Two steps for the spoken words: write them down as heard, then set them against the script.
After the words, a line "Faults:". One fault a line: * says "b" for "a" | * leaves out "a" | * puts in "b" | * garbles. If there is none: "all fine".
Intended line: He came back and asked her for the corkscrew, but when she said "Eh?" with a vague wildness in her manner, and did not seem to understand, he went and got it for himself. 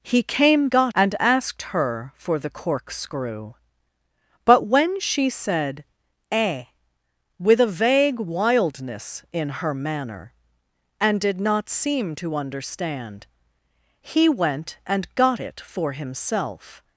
He came got and asked her for the corkscrew, but when she said "Eh?" with a vague wildness in her manner, and did not seem to understand, he went and got it for himself.
Faults:
* says "got" for "back"